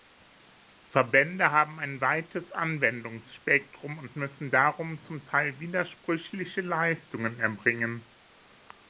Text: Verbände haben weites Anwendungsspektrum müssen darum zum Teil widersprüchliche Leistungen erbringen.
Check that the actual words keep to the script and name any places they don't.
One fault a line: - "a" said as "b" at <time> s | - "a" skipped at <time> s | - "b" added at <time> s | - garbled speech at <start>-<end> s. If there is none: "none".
- "ein" added at 1.8 s
- "und" added at 4.0 s